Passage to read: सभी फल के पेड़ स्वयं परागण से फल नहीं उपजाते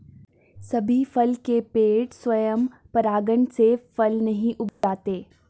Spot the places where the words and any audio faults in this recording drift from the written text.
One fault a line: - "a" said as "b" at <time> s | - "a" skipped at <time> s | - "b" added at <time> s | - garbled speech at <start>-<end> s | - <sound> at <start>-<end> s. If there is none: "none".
- dropout at 4.7-4.8 s